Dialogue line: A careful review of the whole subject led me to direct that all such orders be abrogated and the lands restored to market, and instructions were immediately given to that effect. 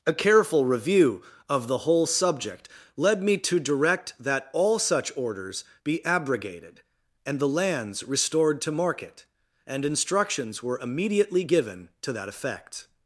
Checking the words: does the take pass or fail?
pass